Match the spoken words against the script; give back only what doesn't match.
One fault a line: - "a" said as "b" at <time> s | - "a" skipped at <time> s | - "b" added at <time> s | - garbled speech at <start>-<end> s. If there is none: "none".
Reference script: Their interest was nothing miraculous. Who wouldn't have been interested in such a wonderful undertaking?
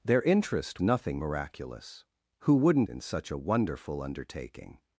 - "was" skipped at 0.8 s
- "have been interested" skipped at 2.9 s